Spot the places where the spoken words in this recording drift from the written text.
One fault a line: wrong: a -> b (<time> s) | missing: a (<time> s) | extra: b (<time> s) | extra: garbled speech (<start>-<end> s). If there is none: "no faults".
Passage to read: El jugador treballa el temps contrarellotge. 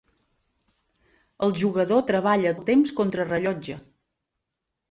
no faults